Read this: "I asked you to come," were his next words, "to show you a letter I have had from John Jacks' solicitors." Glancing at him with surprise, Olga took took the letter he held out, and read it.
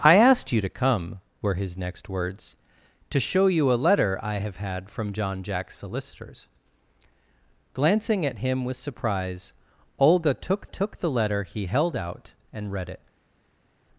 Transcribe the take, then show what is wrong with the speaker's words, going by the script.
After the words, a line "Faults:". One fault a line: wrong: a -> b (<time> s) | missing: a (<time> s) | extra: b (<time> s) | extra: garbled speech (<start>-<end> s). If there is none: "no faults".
"I asked you to come," were his next words, "to show you a letter I have had from John Jacks' solicitors." Glancing at him with surprise, Olga took took the letter he held out, and read it.
Faults:
no faults